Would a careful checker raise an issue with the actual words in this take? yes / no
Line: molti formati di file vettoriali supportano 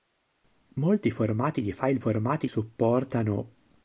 yes